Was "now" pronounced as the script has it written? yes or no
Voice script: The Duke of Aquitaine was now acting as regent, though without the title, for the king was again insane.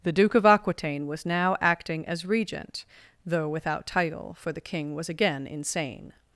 yes